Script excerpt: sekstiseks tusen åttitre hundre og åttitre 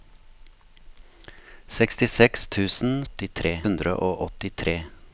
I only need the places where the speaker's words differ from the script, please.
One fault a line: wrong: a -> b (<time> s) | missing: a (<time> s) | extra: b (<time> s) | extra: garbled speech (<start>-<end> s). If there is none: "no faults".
no faults